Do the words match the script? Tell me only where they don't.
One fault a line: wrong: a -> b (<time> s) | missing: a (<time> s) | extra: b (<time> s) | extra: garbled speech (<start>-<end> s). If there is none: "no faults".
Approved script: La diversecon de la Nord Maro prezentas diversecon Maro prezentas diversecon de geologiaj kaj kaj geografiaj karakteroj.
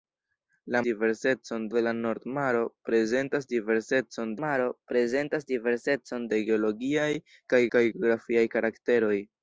no faults